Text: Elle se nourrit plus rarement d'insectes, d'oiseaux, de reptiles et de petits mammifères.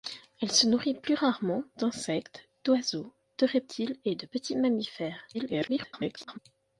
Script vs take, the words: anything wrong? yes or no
yes